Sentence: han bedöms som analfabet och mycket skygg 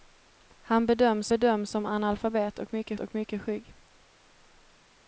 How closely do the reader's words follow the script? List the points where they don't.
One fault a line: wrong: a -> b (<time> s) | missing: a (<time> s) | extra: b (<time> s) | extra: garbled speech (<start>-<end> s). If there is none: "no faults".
extra: bedöms (1.3 s)
extra: och mycket (3.0 s)